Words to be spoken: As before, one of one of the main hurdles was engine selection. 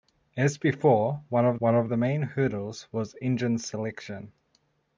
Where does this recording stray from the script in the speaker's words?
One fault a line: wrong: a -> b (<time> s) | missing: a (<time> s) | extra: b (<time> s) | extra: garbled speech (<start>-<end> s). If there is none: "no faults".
no faults